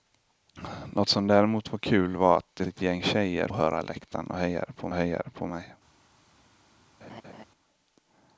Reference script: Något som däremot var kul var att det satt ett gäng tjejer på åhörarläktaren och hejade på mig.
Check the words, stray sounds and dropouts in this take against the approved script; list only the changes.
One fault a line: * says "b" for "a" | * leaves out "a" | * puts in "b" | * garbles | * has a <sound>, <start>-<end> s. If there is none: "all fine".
* leaves out "satt"
* leaves out "på"
* puts in "hejade på"
* has a laugh, 7.0-7.4 s